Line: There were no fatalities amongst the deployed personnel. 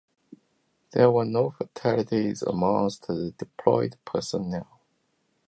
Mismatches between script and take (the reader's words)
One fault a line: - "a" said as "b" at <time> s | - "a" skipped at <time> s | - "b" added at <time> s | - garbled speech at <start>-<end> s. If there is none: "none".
none